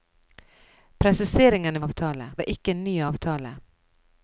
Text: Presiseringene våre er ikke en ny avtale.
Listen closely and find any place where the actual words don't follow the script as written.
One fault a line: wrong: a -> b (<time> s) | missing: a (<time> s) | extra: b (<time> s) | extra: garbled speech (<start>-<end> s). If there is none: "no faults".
wrong: våre -> avtale (1.8 s)